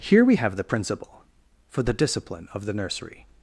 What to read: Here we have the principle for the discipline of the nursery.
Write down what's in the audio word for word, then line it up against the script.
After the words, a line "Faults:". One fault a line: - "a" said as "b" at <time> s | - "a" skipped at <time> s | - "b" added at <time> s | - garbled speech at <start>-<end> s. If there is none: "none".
Here we have the principle for the discipline of the nursery.
Faults:
none